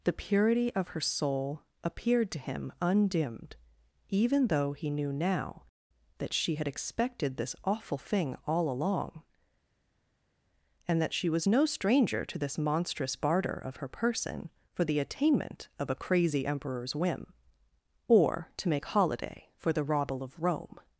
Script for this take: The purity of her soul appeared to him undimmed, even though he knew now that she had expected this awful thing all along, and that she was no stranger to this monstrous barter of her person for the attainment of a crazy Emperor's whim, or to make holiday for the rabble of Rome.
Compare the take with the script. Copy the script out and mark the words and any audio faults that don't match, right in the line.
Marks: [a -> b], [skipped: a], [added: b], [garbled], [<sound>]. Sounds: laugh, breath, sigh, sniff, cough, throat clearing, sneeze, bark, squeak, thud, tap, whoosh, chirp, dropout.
The purity of her soul appeared to him undimmed, even though he knew now that she had expected this awful thing all along, and that she was no stranger to this monstrous barter of her person for the attainment of a crazy Emperor's whim, or to make holiday for the rabble of Rome.